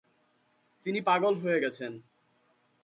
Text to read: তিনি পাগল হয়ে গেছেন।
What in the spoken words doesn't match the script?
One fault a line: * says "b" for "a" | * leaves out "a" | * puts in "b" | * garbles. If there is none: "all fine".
all fine